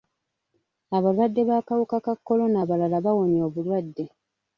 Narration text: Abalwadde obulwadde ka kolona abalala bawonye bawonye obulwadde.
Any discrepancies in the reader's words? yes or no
yes